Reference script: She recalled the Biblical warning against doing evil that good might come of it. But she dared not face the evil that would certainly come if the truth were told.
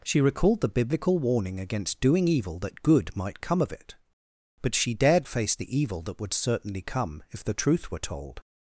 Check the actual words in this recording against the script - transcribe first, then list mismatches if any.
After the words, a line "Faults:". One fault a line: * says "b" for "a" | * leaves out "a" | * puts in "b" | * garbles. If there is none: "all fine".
She recalled the Biblical warning against doing evil that good might come of it. But she dared face the evil that would certainly come if the truth were told.
Faults:
* leaves out "not"